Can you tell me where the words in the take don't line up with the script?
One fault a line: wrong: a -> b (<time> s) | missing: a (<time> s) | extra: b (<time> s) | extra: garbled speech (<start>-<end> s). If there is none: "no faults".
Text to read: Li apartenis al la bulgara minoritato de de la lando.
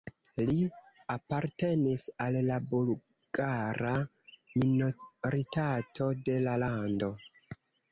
missing: de (6.4 s)